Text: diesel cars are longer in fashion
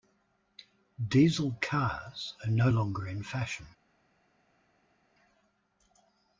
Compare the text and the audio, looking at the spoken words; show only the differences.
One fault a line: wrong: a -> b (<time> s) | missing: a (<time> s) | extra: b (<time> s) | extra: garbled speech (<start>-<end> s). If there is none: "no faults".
extra: no (2.5 s)